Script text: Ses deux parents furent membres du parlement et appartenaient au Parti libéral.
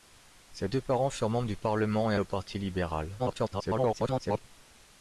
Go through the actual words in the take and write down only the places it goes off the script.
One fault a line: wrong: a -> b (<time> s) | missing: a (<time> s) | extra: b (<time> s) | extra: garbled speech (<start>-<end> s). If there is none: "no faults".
missing: appartenaient (2.1 s)
extra: garbled speech (3.2-4.4 s)